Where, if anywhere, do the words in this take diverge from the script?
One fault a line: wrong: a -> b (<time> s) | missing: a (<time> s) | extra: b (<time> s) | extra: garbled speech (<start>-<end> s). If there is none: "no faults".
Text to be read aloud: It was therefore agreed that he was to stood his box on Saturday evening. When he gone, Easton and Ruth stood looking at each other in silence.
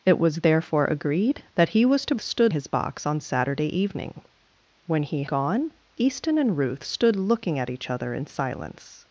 no faults